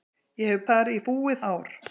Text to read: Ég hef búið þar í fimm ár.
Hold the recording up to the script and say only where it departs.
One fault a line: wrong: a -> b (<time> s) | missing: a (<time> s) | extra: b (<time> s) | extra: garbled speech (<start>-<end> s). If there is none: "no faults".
missing: búið (0.6 s)
wrong: fimm -> búið (1.1 s)